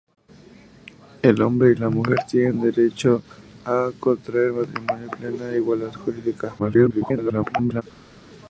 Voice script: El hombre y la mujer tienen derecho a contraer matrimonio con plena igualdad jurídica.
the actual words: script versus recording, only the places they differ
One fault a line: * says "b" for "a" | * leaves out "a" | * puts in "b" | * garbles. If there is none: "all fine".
* leaves out "con"
* garbles